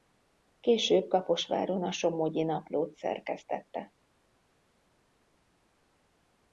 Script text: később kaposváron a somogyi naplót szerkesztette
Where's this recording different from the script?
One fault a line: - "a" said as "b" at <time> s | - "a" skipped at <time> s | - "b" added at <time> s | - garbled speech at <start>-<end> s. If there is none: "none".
none